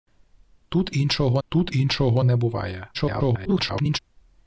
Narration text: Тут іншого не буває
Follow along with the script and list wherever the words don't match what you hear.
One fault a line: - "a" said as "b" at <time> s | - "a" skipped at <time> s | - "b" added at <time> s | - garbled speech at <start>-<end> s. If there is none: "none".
- "тут іншого" added at 1.5 s
- garbled speech at 2.9-4.0 s